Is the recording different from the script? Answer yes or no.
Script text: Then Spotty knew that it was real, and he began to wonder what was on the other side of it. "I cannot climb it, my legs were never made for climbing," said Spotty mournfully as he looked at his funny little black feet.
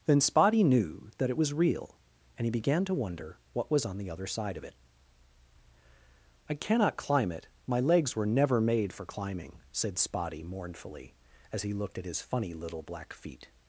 no